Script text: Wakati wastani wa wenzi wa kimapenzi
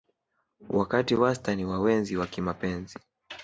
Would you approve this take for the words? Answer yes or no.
yes